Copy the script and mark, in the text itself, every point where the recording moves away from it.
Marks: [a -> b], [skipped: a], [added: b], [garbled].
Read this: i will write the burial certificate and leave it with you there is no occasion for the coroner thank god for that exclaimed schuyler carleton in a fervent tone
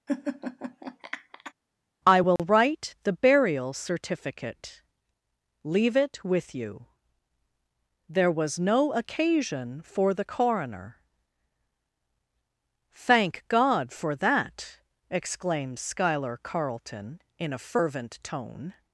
i will write the burial certificate [skipped: and] leave it with you there [is -> was] no occasion for the coroner thank god for that exclaimed schuyler carleton in a fervent tone